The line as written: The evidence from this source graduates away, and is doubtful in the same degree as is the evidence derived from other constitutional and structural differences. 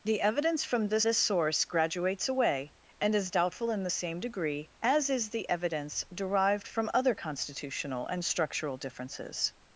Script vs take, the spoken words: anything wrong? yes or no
yes